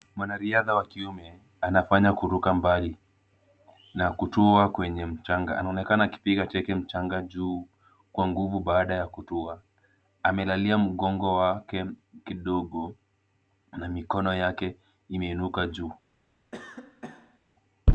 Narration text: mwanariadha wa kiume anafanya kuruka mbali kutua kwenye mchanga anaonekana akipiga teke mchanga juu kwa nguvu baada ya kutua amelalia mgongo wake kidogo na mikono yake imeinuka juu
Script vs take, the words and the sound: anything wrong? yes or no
yes